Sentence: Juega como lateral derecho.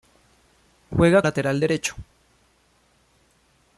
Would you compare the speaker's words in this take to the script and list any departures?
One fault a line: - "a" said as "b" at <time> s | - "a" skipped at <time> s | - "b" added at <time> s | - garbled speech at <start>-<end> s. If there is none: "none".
- "como" skipped at 1.2 s